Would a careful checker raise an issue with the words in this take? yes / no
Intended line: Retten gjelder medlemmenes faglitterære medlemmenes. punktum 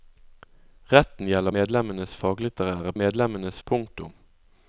no